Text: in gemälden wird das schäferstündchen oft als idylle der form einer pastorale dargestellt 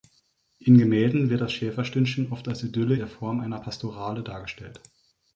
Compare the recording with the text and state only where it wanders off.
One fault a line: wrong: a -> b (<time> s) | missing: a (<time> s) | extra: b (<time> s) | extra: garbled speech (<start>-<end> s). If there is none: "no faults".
no faults